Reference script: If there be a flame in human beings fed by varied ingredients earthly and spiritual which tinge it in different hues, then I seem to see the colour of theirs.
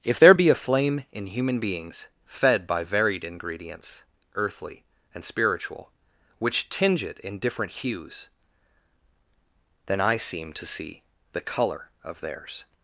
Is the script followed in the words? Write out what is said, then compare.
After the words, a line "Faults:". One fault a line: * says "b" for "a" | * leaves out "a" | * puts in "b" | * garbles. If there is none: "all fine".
If there be a flame in human beings fed by varied ingredients earthly and spiritual which tinge it in different hues, then I seem to see the colour of theirs.
Faults:
all fine